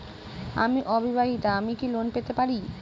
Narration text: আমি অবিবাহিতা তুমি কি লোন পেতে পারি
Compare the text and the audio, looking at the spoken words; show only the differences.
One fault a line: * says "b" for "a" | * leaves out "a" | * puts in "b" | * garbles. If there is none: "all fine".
* says "আমি" for "তুমি"